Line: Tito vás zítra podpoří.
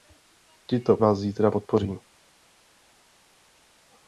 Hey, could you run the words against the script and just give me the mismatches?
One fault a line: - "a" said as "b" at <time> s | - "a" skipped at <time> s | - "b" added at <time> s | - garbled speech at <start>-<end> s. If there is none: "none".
none